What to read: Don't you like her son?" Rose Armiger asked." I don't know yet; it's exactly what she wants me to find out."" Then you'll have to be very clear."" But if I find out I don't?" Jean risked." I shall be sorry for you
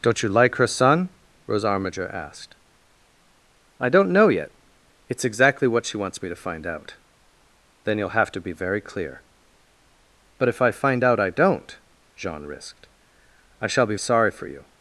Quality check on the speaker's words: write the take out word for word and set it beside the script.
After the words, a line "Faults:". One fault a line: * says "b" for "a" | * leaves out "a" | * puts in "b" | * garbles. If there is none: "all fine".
Don't you like her son?" Rose Armiger asked." I don't know yet; it's exactly what she wants me to find out."" Then you'll have to be very clear."" But if I find out I don't?" Jean risked." I shall be sorry for you
Faults:
all fine